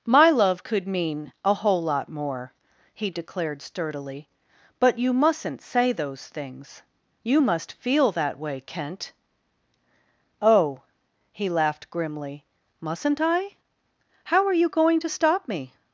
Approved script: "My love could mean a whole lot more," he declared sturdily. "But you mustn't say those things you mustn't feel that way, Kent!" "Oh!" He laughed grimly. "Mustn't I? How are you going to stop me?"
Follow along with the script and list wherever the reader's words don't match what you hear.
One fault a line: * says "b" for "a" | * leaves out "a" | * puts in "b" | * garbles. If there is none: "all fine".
* says "must" for "mustn't"